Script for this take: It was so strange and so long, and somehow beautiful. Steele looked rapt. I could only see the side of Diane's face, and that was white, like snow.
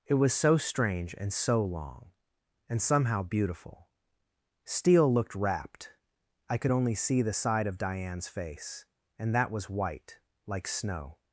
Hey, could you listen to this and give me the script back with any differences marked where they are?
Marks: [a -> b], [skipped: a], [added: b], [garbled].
It was so strange and so long, and somehow beautiful. Steele looked rapt. I could only see the side of Diane's face, and that was white, like snow.